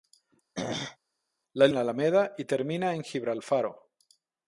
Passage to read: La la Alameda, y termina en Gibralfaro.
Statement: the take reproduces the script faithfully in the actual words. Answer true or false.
true